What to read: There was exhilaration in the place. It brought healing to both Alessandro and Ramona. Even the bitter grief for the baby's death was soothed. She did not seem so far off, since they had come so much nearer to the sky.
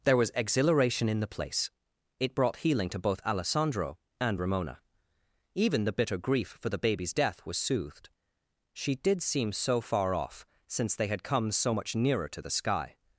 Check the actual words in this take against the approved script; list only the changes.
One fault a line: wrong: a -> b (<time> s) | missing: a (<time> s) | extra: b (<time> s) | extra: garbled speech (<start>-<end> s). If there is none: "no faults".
missing: not (9.2 s)